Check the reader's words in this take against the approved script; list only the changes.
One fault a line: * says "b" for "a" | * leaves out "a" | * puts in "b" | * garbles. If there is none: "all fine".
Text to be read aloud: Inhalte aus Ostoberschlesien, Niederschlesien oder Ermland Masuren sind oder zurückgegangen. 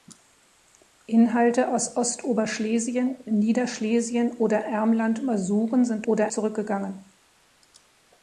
all fine